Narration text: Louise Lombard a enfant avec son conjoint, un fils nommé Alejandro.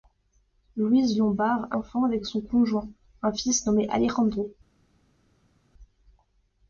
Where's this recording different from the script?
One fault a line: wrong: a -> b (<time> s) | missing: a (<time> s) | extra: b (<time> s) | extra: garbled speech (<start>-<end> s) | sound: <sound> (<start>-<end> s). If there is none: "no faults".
no faults